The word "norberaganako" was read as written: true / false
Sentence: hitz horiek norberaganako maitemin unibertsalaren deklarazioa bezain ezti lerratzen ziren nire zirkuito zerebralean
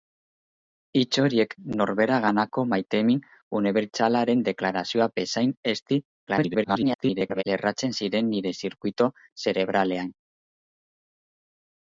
true